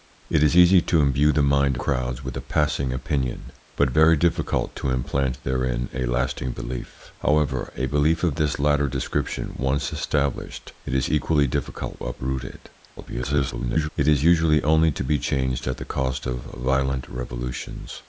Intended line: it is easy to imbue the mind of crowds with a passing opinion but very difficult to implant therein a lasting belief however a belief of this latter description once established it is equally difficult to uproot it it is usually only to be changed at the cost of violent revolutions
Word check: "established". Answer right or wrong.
right